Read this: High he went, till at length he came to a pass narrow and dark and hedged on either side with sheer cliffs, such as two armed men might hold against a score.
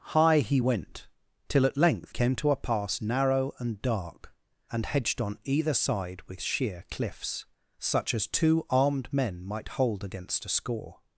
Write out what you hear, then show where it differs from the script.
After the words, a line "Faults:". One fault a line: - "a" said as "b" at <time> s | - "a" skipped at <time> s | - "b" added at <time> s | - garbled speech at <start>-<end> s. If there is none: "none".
High he went, till at length came to a pass narrow and dark and hedged on either side with sheer cliffs, such as two armed men might hold against a score.
Faults:
- "he" skipped at 2.1 s